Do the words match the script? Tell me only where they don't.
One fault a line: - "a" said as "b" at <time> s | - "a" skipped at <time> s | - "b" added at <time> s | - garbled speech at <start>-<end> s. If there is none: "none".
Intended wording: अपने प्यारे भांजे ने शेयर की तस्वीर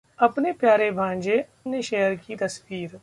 none